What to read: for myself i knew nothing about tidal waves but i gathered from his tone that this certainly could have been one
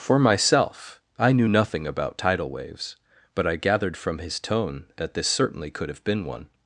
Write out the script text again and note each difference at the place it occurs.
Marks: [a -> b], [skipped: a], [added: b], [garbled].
for myself i knew nothing about tidal waves but i gathered from his tone that this certainly could have been one